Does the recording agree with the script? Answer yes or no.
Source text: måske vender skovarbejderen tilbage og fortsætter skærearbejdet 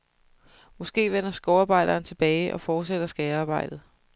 yes